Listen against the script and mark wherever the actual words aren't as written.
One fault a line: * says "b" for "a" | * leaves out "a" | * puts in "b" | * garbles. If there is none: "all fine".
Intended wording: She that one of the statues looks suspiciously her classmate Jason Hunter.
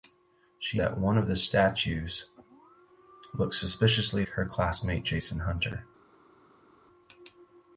all fine